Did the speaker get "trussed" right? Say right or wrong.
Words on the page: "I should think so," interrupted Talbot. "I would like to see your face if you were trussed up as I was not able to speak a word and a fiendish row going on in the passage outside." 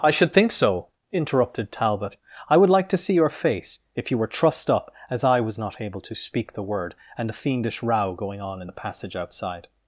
right